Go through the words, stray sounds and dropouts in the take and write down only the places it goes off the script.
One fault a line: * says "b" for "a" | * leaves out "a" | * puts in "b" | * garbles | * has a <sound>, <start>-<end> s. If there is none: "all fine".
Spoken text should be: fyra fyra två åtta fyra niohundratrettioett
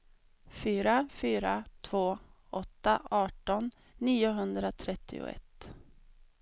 * says "arton" for "fyra"